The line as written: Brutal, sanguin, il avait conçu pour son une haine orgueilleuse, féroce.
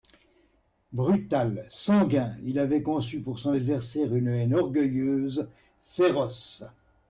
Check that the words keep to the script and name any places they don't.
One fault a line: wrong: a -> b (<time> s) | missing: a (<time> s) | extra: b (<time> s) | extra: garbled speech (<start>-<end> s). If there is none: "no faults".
extra: adversaire (3.5 s)